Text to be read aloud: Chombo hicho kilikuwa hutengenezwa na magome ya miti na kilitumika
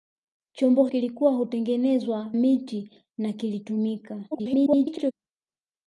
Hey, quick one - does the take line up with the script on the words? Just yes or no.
no